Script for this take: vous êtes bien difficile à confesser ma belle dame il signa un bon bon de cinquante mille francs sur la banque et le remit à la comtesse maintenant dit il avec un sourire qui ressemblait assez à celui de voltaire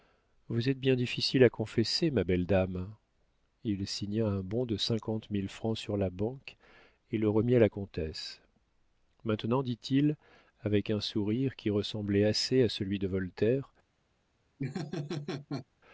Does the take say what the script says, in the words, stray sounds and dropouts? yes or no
no